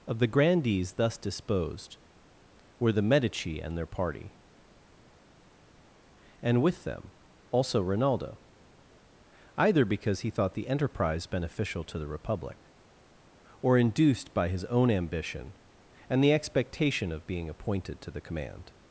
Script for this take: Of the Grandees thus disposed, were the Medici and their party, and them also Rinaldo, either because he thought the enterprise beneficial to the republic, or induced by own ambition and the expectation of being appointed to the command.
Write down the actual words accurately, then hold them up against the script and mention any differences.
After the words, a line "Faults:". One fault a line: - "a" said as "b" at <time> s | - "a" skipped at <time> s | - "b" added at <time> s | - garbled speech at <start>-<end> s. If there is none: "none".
Of the Grandees thus disposed, were the Medici and their party, and with them also Rinaldo, either because he thought the enterprise beneficial to the republic, or induced by his own ambition and the expectation of being appointed to the command.
Faults:
- "with" added at 6.6 s
- "his" added at 14.5 s